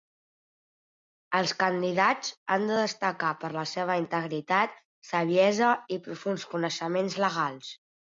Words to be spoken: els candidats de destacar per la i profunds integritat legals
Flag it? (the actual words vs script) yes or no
yes